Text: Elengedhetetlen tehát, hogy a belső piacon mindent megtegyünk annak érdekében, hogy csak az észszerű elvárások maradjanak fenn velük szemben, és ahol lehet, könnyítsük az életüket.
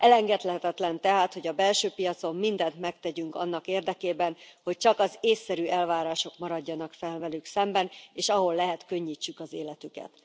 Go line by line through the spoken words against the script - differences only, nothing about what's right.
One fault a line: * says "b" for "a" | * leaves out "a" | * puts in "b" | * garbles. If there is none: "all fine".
all fine